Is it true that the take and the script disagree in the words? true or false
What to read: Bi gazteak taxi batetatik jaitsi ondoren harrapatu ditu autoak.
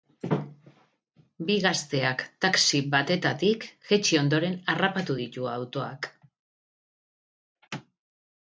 false